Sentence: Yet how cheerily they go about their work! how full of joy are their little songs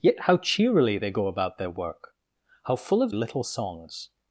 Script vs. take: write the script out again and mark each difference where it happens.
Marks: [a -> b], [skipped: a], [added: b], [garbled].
Yet how cheerily they go about their work! how full of [skipped: joy are their] little songs